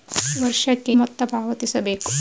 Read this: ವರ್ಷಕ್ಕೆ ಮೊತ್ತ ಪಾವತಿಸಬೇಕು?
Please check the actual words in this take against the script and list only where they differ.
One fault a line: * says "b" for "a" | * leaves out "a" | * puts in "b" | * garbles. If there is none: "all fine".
all fine